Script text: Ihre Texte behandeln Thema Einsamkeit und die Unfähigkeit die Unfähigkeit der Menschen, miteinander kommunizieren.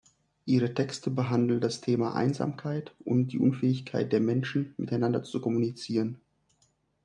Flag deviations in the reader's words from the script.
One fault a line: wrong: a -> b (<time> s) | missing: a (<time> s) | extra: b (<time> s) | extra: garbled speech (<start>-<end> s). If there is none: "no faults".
extra: das (1.6 s)
missing: die Unfähigkeit (4.1 s)
extra: zu (5.2 s)